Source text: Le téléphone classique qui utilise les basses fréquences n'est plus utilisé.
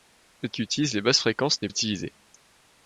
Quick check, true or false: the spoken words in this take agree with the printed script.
false